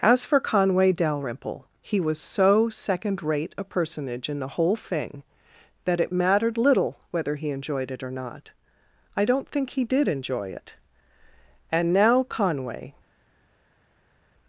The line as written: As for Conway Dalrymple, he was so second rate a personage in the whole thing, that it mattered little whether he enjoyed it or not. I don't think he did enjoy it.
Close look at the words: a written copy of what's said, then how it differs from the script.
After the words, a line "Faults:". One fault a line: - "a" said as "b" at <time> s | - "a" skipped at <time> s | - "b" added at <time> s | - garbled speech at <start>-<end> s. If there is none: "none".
As for Conway Dalrymple, he was so second rate a personage in the whole thing, that it mattered little whether he enjoyed it or not. I don't think he did enjoy it. "And now, Conway
Faults:
- "And now Conway" added at 11.7 s